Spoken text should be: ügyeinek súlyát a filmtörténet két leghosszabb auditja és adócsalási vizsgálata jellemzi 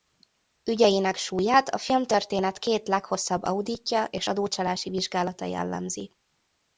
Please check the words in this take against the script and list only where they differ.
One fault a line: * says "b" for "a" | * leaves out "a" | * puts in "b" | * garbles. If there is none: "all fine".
all fine